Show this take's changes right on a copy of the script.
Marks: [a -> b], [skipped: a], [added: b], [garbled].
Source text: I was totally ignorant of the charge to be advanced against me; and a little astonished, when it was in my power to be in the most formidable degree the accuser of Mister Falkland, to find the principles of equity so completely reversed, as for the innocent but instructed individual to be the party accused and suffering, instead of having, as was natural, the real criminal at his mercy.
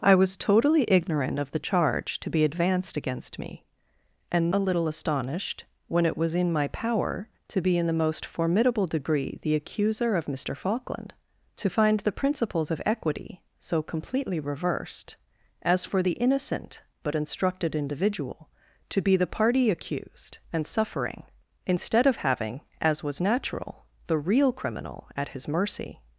I was totally ignorant of the charge to be advanced against me; and a little astonished, when it was in my power to be in the most formidable degree the accuser of Mister Falkland, to find the principles of equity so completely reversed, as for the innocent but instructed individual to be the party accused and suffering, instead of having, as was natural, the real criminal at his mercy.